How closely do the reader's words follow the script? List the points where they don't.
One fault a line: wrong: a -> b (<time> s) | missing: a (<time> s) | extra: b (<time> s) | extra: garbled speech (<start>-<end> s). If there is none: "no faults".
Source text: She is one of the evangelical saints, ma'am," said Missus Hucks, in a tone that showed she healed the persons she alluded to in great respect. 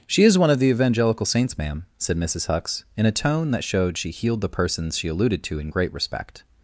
no faults